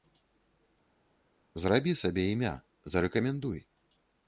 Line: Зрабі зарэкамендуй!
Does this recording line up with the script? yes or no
no